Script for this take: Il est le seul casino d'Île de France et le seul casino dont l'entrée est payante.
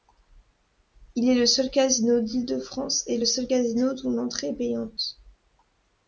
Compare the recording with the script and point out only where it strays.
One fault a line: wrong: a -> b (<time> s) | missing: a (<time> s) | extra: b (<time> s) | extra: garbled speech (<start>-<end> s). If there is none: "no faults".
no faults